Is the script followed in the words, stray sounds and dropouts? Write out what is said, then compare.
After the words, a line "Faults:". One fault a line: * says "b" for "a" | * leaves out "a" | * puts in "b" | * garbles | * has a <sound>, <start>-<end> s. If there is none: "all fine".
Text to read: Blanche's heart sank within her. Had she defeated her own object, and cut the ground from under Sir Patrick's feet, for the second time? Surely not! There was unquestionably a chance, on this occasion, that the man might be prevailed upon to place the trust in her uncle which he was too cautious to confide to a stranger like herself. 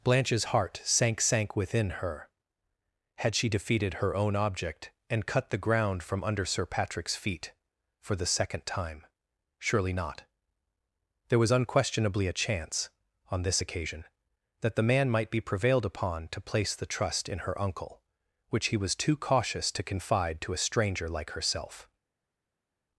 Blanche's heart sank sank within her. Had she defeated her own object, and cut the ground from under Sir Patrick's feet, for the second time? Surely not! There was unquestionably a chance, on this occasion, that the man might be prevailed upon to place the trust in her uncle which he was too cautious to confide to a stranger like herself.
Faults:
* puts in "sank"